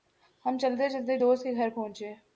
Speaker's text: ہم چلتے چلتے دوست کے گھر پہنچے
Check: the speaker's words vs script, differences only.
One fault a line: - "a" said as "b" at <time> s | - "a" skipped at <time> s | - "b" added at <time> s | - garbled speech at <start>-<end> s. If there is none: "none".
none